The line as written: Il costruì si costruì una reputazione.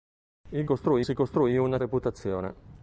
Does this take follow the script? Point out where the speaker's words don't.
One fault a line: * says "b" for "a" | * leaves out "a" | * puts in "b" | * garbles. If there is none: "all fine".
all fine